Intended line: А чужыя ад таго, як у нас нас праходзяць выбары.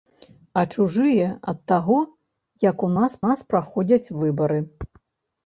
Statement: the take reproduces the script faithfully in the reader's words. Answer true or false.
true